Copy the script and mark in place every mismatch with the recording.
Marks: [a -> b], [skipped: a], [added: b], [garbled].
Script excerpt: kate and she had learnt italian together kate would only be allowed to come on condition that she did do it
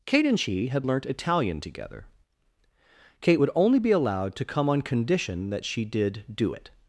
kate and she had learnt italian together kate would only be allowed to come on condition that she did do it